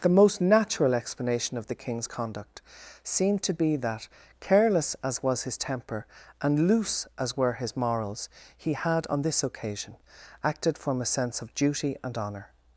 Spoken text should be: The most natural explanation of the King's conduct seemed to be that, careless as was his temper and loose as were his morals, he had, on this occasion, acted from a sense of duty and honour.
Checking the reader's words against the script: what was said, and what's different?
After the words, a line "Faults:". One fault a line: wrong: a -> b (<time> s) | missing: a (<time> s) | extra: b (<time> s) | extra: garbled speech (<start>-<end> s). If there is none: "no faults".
The most natural explanation of the King's conduct seemed to be that, careless as was his temper and loose as were his morals, he had, on this occasion, acted from a sense of duty and honour.
Faults:
no faults